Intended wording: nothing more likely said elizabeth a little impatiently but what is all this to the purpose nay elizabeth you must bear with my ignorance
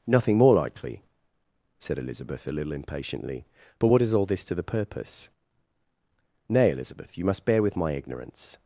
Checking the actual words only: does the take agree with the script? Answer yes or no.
yes